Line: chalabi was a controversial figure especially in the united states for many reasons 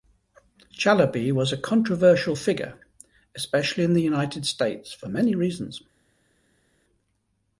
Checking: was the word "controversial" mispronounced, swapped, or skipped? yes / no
no